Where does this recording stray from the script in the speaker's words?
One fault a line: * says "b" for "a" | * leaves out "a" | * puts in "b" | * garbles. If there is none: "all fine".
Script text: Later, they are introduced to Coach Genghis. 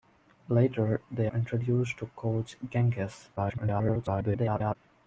* leaves out "are"
* garbles